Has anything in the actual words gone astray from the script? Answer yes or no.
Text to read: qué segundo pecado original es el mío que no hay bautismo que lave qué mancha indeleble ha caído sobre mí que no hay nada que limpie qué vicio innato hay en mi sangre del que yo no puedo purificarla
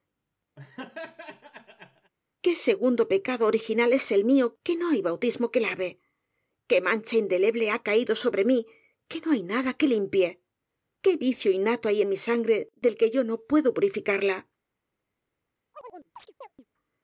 no